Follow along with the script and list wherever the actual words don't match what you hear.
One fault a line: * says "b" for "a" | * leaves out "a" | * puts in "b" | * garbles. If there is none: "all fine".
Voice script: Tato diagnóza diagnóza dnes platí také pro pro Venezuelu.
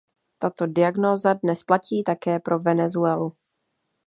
* leaves out "diagnóza"
* leaves out "pro"